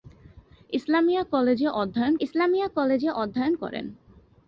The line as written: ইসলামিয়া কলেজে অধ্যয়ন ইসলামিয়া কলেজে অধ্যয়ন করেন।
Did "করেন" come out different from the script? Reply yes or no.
no